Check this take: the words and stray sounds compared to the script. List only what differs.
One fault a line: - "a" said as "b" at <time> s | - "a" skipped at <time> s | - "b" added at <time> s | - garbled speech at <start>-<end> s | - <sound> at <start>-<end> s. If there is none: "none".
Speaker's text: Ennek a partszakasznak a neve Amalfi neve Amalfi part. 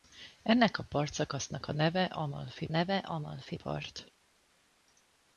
none